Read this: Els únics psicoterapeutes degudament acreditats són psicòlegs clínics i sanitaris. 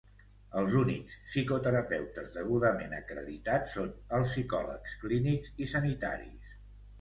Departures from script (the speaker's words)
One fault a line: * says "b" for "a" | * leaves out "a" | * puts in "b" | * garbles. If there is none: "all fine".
* puts in "els"